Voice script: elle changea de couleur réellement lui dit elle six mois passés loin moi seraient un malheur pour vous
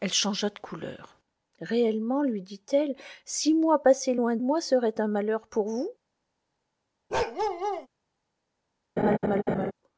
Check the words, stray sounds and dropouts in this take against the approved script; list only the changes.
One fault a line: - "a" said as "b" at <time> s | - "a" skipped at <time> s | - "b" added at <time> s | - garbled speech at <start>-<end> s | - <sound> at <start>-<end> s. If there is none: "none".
- bark at 7.1-7.9 s
- laugh at 9.0-9.7 s